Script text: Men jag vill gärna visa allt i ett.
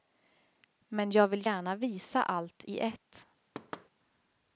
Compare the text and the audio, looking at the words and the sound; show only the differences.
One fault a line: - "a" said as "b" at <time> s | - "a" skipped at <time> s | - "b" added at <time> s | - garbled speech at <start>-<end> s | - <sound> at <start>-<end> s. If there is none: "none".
- thud at 3.5-3.9 s